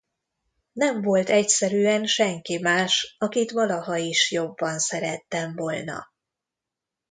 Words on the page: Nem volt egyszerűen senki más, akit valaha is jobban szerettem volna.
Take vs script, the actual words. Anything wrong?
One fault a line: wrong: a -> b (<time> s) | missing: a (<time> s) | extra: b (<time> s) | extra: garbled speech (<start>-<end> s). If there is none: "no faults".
no faults